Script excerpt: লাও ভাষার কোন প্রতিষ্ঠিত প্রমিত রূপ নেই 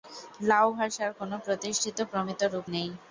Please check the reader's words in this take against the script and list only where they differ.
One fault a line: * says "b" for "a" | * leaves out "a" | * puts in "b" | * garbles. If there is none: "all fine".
all fine